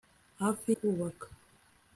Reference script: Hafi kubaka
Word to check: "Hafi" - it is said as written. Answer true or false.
true